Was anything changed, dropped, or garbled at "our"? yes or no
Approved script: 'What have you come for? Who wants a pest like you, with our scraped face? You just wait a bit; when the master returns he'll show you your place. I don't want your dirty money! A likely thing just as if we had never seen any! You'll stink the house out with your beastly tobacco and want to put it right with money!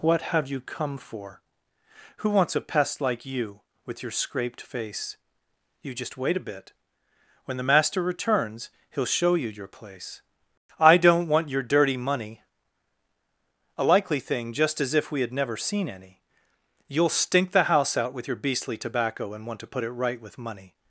yes